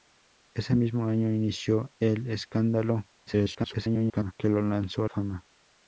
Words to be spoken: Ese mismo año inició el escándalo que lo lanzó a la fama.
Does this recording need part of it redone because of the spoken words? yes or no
yes